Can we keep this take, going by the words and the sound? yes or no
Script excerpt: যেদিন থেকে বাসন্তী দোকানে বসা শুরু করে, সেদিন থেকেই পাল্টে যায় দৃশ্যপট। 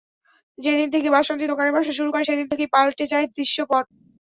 yes